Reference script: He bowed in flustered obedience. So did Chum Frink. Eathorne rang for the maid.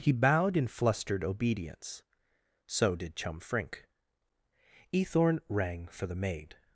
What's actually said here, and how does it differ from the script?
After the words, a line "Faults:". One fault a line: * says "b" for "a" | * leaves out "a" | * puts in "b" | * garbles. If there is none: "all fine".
He bowed in flustered obedience. So did Chum Frink. Eathorne rang for the maid.
Faults:
all fine